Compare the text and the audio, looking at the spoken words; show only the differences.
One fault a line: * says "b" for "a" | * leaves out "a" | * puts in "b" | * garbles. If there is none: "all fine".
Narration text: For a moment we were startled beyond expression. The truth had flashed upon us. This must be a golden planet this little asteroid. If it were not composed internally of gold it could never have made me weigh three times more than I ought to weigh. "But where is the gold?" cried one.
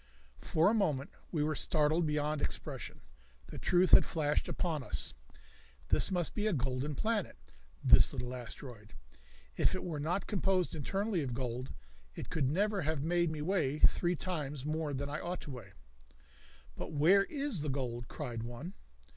all fine